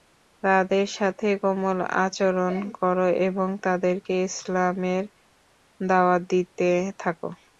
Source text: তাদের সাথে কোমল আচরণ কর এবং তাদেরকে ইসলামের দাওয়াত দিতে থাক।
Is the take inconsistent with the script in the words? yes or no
no